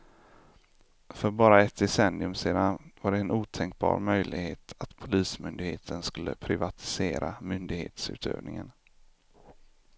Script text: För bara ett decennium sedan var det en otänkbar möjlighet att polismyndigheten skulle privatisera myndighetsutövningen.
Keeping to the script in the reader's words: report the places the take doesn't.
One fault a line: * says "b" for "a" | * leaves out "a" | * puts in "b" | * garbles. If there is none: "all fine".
all fine